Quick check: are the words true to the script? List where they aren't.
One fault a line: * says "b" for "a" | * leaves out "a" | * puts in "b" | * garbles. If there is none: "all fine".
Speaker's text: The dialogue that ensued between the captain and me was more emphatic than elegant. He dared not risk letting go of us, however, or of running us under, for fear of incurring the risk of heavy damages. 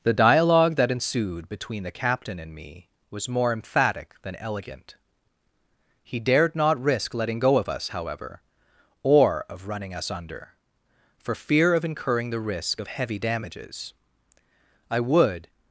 * puts in "I would"